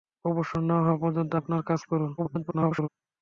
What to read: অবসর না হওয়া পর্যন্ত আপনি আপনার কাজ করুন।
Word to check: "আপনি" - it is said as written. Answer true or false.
false